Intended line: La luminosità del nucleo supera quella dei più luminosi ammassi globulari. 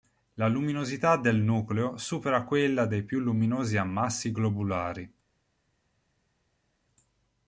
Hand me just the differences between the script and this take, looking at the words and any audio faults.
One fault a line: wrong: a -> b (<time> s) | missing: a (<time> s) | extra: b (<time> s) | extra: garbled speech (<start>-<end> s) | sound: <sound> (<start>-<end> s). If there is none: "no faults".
no faults